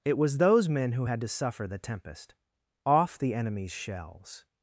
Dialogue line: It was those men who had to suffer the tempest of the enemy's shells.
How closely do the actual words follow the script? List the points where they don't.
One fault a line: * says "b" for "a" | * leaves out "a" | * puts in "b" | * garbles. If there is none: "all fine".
* says "off" for "of"